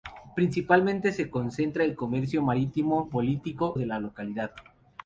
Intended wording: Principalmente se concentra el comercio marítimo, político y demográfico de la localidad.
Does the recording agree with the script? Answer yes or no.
no